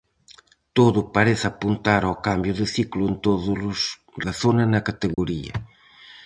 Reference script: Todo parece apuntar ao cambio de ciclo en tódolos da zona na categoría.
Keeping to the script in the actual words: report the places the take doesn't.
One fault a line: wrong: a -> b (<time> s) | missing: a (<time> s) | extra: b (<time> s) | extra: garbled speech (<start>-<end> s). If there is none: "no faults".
no faults